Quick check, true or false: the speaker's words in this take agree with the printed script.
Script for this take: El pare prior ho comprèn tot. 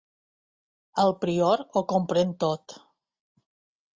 false